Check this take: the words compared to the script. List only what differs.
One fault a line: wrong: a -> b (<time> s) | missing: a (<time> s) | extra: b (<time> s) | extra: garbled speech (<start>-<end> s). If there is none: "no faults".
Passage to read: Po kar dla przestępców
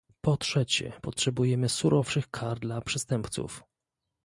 extra: trzecie potrzebujemy surowszych (0.4 s)